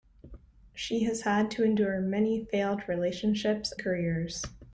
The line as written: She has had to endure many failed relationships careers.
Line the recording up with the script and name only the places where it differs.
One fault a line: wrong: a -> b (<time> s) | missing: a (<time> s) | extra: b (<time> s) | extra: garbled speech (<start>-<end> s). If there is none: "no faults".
no faults